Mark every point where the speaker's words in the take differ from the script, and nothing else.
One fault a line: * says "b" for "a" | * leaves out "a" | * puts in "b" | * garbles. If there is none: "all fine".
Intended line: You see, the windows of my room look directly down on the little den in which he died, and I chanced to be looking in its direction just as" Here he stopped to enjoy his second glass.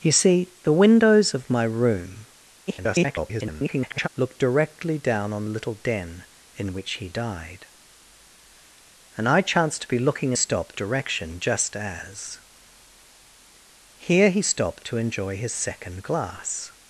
* garbles
* leaves out "the"
* says "stopped" for "its"